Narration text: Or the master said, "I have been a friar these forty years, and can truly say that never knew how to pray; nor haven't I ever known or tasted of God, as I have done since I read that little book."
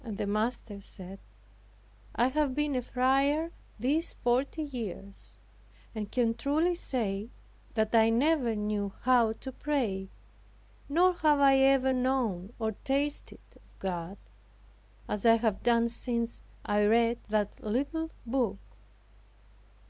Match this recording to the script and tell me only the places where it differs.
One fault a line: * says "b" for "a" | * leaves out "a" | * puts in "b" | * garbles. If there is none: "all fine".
* says "And" for "Or"
* puts in "I"
* says "have" for "haven't"